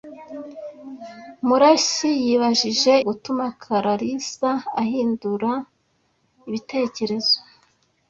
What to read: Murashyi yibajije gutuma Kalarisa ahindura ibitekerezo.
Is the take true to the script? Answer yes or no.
yes